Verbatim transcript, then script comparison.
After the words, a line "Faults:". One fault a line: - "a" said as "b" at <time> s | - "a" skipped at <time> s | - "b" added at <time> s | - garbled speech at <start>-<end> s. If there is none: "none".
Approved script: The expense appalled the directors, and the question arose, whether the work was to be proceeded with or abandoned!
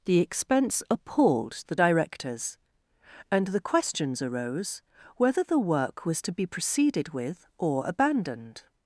The expense appalled the directors, and the questions arose, whether the work was to be proceeded with or abandoned!
Faults:
- "question" said as "questions" at 3.6 s